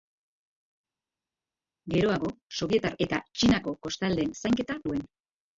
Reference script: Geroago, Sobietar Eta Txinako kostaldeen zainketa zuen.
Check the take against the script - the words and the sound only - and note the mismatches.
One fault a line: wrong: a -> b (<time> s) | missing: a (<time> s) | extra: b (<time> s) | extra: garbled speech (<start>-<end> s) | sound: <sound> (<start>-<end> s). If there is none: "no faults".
no faults